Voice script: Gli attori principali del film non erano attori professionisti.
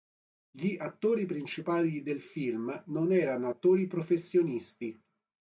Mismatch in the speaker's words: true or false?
false